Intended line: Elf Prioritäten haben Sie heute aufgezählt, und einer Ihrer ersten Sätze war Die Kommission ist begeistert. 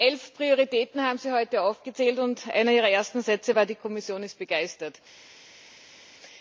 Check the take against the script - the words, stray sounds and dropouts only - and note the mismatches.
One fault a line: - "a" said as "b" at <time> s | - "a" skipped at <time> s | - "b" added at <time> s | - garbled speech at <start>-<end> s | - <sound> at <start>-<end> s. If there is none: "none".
none